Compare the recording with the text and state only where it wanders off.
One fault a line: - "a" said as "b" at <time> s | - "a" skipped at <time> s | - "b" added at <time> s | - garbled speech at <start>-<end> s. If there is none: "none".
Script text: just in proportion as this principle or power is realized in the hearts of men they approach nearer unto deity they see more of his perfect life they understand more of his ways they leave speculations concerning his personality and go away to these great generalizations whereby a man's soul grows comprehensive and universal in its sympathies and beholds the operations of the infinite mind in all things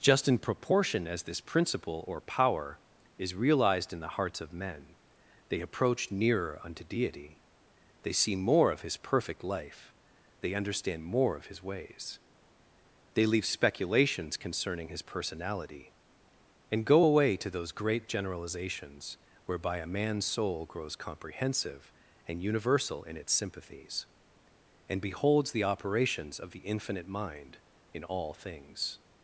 - "these" said as "those" at 17.5 s